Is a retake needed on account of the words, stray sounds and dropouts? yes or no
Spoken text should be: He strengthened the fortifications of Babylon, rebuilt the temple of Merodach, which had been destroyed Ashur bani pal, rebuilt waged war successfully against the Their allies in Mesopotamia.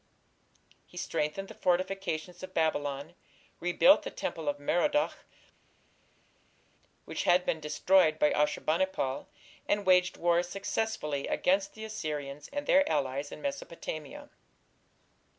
yes